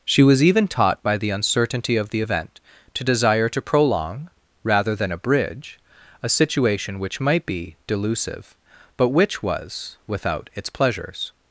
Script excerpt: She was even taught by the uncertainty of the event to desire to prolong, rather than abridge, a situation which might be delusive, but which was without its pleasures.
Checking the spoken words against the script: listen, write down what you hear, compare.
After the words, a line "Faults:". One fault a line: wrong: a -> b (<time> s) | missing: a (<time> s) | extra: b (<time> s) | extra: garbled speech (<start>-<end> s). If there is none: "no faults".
She was even taught by the uncertainty of the event to desire to prolong, rather than abridge, a situation which might be delusive, but which was without its pleasures.
Faults:
no faults